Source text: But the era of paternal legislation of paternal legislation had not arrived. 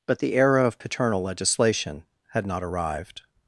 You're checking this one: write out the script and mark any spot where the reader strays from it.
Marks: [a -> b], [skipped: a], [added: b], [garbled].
But the era of paternal legislation [skipped: of paternal legislation] had not arrived.